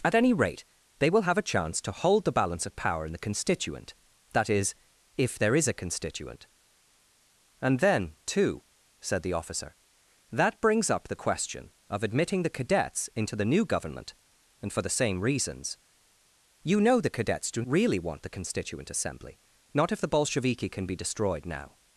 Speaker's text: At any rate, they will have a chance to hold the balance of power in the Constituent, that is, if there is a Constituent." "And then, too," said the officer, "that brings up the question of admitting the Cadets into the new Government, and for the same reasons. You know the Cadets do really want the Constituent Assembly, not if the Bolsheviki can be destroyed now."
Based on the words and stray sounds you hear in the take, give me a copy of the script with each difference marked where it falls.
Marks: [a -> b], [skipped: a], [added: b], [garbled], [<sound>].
At any rate, they will have a chance to hold the balance of power in the Constituent, that is, if there is a Constituent." "And then, too," said the officer, "that brings up the question of admitting the Cadets into the new Government, and for the same reasons. You know the Cadets do really want the Constituent Assembly, not if the Bolsheviki can be destroyed now."